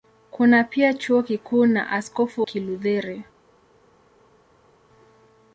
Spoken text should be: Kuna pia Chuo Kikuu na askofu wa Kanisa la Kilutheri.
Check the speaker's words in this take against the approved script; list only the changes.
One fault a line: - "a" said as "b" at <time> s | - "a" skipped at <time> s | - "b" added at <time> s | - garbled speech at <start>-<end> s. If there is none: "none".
- "wa Kanisa la" skipped at 2.4 s